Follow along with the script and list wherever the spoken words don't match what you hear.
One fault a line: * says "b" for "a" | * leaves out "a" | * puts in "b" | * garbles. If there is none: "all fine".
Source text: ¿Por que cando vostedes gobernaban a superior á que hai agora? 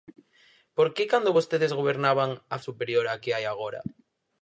all fine